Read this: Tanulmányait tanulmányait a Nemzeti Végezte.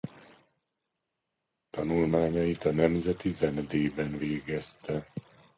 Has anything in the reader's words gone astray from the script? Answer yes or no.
yes